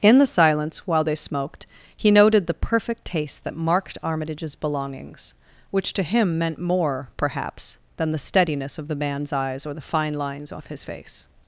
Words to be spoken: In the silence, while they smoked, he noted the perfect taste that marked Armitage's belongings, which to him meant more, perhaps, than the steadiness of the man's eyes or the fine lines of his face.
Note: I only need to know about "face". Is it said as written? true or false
true